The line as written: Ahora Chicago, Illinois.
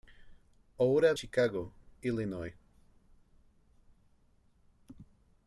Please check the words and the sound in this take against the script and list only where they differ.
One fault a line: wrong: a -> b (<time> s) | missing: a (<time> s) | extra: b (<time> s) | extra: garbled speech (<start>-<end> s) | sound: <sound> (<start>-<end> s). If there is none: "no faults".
no faults